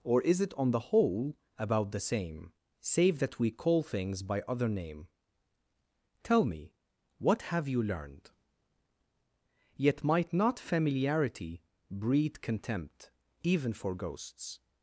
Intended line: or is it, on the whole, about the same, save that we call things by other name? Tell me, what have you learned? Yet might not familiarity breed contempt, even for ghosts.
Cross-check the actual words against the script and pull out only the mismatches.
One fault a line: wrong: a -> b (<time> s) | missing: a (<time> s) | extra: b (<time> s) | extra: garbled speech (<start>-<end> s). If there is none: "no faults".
no faults